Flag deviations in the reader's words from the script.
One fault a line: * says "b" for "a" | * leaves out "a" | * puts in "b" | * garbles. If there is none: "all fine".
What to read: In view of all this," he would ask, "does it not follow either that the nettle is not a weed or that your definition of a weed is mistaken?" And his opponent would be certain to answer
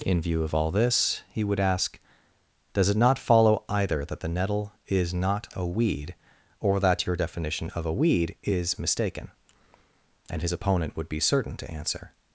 all fine